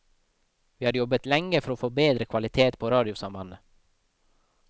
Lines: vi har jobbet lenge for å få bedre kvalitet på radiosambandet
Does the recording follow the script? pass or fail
pass